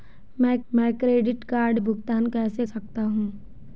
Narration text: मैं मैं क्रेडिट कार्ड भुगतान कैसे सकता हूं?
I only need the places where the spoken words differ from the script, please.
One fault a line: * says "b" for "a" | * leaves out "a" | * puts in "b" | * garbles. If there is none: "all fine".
all fine